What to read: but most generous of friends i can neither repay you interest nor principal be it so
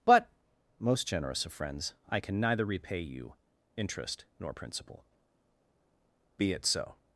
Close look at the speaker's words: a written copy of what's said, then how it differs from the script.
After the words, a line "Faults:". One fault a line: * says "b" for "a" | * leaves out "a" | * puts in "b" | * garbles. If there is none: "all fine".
but most generous of friends i can neither repay you interest nor principal be it so
Faults:
all fine